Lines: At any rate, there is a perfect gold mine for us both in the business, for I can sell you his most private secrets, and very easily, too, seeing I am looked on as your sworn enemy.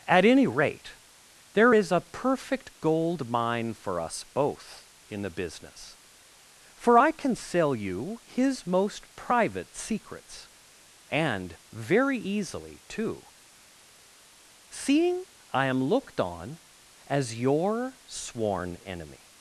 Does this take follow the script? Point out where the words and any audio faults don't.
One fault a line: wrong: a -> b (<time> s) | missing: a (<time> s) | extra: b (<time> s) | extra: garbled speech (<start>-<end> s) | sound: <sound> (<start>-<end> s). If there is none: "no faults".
no faults